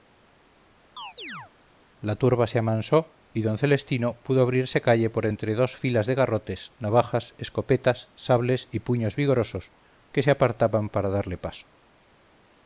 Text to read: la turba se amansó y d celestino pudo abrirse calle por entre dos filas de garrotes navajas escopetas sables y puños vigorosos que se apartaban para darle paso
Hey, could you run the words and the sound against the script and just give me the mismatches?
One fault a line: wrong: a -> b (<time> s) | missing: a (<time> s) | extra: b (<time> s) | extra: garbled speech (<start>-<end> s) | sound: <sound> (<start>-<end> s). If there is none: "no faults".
sound: chirp (1.0-1.5 s)